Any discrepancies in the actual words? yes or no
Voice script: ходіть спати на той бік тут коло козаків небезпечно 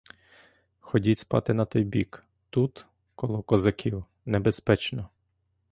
no